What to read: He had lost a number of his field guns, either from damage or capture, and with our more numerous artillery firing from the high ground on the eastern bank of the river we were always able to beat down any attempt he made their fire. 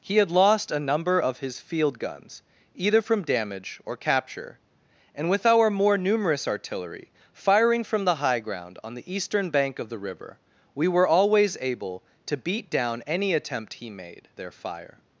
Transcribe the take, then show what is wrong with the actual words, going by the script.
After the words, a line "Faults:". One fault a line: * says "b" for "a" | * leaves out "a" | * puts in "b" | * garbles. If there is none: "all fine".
He had lost a number of his field guns, either from damage or capture, and with our more numerous artillery firing from the high ground on the eastern bank of the river we were always able to beat down any attempt he made their fire.
Faults:
all fine